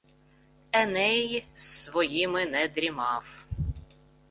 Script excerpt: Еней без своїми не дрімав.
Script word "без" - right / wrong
wrong